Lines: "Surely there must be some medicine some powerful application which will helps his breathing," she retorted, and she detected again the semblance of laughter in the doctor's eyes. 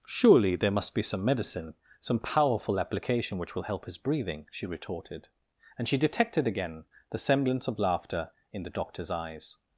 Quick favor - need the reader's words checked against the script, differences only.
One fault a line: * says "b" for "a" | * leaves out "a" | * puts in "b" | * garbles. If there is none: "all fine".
* says "help" for "helps"